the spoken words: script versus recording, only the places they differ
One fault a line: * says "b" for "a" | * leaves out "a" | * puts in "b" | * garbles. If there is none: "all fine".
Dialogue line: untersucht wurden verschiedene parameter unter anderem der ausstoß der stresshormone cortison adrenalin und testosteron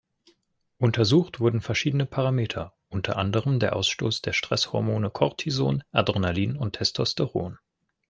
all fine